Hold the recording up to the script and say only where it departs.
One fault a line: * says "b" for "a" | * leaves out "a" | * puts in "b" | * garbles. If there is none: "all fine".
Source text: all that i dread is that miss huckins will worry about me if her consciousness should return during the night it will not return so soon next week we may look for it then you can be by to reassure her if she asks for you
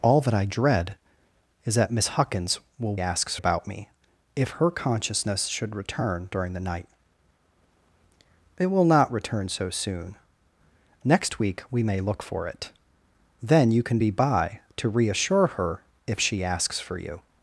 * says "asks" for "worry"